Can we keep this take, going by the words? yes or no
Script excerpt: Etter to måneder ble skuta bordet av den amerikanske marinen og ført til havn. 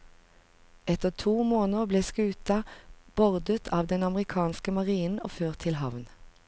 yes